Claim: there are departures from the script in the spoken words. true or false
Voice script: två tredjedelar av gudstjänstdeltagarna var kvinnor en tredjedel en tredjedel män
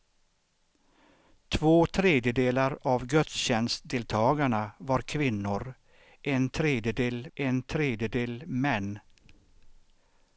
false